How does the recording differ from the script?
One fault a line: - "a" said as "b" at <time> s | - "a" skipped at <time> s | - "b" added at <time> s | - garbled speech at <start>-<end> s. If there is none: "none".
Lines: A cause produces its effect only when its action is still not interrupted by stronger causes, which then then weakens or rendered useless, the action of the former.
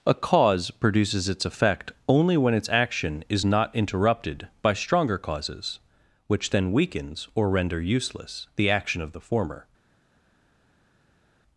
- "still" skipped at 3.5 s
- "then" skipped at 6.7 s
- "rendered" said as "render" at 7.5 s